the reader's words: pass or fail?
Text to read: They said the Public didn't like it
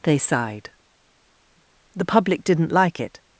fail